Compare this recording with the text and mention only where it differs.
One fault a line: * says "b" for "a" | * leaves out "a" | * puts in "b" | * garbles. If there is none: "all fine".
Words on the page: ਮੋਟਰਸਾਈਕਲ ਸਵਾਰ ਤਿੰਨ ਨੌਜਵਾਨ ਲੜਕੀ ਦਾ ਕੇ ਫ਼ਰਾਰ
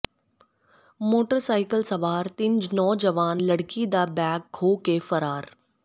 * puts in "ਬੈਗ ਖੋਹ"